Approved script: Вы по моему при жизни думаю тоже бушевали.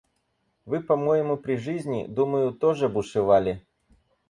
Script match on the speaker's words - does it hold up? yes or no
yes